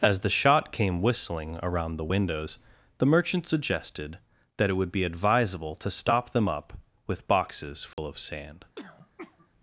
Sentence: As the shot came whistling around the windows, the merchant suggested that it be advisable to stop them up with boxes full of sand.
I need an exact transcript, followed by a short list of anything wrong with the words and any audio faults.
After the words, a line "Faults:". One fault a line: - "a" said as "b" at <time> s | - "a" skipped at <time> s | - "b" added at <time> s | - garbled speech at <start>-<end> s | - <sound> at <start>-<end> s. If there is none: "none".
As the shot came whistling around the windows, the merchant suggested that it would be advisable to stop them up with boxes full of sand.
Faults:
- "would" added at 4.7 s
- dropout at 7.9-8.0 s
- throat clearing at 8.8-9.5 s